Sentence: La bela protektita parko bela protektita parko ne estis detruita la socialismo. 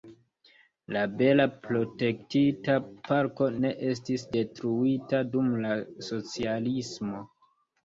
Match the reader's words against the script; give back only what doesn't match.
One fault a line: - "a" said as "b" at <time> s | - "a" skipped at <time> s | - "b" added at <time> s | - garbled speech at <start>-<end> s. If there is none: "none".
- "bela protektita parko" skipped at 3.5 s
- "dum" added at 5.4 s